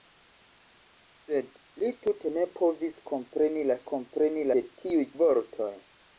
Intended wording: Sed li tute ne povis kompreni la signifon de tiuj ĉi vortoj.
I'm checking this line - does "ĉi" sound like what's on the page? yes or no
no